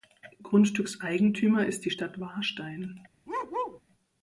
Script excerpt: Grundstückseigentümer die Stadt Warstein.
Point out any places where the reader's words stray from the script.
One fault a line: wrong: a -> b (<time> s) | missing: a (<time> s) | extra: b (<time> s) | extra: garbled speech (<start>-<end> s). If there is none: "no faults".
extra: ist (1.7 s)